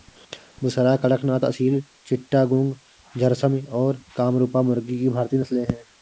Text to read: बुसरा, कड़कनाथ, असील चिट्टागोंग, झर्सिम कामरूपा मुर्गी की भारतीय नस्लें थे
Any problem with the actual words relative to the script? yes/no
yes